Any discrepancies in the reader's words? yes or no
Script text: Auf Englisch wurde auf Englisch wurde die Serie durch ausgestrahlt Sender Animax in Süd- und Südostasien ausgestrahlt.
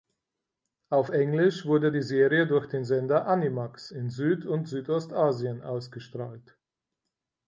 yes